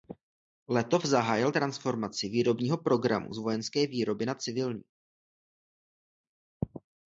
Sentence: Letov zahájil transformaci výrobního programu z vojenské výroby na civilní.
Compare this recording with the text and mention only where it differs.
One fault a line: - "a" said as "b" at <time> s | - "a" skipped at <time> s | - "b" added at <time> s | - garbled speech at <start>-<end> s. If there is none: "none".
none